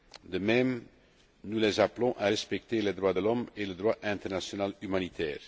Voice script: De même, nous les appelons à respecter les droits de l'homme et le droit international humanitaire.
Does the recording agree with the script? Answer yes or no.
yes